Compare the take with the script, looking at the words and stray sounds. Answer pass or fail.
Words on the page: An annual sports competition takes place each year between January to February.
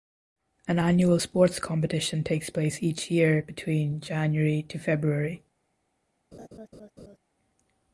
fail